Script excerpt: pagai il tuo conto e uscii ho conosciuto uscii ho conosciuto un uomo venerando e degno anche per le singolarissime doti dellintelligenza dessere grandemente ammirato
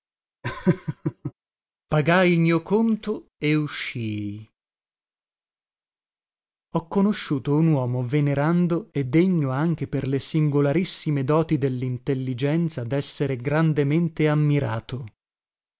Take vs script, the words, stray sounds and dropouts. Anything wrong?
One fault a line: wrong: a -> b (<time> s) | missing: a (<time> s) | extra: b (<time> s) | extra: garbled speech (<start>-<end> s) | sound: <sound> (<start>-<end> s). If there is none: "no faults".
sound: laugh (0.4-1.3 s)
wrong: tuo -> mio (2.4 s)
missing: uscii ho conosciuto (7.6 s)